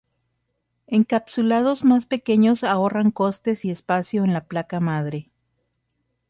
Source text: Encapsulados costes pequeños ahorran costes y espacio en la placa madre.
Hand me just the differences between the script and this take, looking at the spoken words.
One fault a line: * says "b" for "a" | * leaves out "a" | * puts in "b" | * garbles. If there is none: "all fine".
* says "más" for "costes"